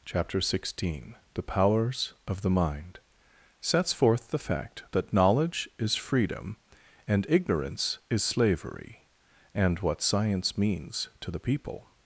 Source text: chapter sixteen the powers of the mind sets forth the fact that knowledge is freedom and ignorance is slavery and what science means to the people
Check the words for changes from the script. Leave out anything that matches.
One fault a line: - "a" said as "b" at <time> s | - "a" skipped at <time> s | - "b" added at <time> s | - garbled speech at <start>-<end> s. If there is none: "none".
none